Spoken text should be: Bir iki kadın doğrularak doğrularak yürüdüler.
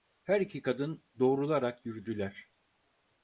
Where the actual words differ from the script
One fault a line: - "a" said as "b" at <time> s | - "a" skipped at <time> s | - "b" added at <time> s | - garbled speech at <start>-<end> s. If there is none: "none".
- "Bir" said as "Her" at 0.2 s
- "doğrularak" skipped at 1.9 s